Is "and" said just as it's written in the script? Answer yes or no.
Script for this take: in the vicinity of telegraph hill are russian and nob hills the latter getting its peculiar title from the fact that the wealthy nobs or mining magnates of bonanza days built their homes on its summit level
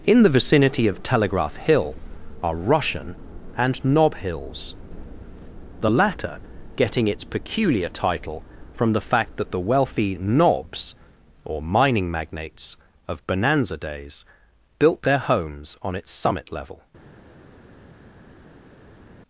yes